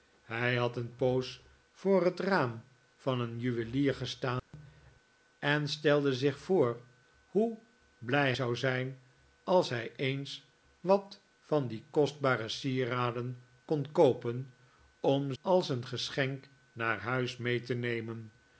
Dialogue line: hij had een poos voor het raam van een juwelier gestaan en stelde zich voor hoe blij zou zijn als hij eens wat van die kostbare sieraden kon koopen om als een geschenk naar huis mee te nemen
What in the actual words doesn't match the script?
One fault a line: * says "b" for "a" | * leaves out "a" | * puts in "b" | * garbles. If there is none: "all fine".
all fine